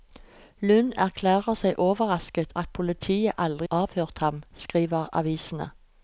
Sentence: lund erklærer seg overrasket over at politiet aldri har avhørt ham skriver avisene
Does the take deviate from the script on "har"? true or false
true